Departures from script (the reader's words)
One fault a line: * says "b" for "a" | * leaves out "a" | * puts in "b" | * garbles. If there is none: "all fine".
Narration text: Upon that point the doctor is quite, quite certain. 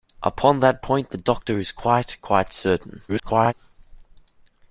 * garbles